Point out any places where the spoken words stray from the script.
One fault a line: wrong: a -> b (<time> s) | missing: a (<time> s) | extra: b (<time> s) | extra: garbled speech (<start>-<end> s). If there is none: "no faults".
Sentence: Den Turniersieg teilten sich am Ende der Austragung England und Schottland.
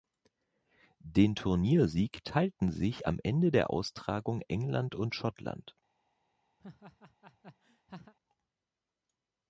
no faults